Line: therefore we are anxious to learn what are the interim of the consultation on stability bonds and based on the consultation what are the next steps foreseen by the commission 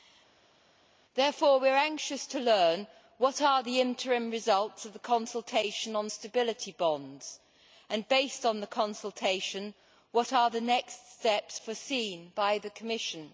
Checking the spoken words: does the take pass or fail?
fail